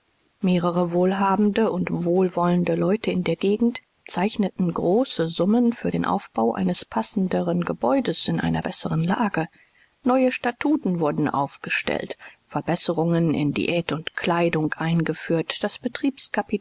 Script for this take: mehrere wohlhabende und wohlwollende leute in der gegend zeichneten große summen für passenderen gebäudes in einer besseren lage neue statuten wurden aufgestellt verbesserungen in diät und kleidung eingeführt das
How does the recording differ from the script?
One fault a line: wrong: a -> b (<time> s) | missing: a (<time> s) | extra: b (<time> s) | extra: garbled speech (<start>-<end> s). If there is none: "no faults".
extra: den aufbau eines (5.9 s)